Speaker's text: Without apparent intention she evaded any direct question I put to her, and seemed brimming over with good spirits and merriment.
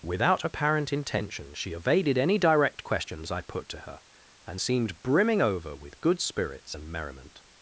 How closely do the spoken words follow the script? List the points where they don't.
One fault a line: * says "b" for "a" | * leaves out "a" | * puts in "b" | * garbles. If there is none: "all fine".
* says "questions" for "question"